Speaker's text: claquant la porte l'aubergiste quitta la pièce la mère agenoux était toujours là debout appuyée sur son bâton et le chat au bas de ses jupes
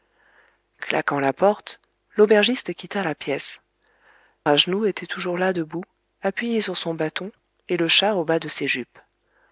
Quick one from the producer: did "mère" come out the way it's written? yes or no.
no